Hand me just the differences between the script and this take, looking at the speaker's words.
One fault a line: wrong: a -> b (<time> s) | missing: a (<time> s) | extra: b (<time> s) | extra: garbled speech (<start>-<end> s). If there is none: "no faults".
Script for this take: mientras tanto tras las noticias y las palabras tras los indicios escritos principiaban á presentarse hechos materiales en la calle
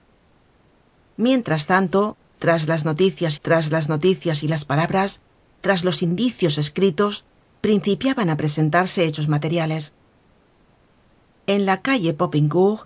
extra: tras las noticias (3.4 s)